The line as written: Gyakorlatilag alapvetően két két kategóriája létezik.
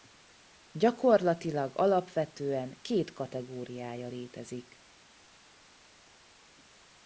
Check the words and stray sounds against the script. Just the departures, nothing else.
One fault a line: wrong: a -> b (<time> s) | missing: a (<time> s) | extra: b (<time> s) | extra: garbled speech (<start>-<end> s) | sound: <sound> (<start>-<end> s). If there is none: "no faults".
missing: két (3.1 s)